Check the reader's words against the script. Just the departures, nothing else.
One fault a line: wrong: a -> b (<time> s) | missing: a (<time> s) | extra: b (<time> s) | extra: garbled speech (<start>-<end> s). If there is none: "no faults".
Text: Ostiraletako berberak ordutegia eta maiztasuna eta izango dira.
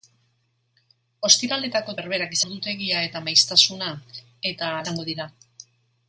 no faults